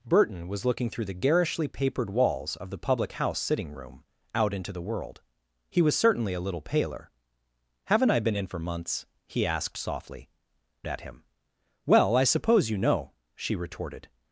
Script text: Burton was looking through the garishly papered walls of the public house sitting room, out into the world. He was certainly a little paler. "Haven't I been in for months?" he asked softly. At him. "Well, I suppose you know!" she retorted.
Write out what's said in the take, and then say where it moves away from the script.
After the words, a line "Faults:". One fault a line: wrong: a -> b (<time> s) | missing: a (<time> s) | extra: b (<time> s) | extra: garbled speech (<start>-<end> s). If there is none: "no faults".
Burton was looking through the garishly papered walls of the public house sitting room, out into the world. He was certainly a little paler. "Haven't I been in for months?" he asked softly. At him. "Well, I suppose you know!" she retorted.
Faults:
no faults